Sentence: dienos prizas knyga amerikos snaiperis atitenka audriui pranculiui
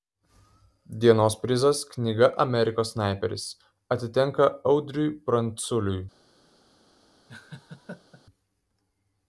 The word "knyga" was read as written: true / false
true